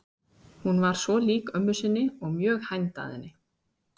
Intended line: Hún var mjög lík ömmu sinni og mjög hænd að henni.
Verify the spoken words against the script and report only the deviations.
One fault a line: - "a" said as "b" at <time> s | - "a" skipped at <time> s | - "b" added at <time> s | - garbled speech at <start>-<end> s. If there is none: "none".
- "mjög" said as "svo" at 1.0 s